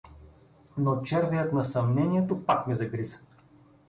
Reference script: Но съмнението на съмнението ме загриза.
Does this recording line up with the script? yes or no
no